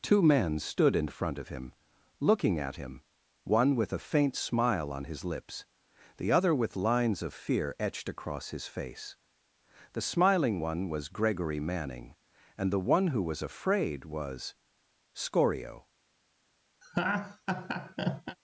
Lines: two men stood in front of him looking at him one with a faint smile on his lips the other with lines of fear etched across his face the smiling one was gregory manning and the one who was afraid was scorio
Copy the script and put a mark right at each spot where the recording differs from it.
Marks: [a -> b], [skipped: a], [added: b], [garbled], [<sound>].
two men stood in front of him looking at him one with a faint smile on his lips the other with lines of fear etched across his face the smiling one was gregory manning and the one who was afraid was scorio [laugh]